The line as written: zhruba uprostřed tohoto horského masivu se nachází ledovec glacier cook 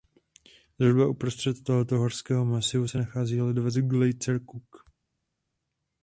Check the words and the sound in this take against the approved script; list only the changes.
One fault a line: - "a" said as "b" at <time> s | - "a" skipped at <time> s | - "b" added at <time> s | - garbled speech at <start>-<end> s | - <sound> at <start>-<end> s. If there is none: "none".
none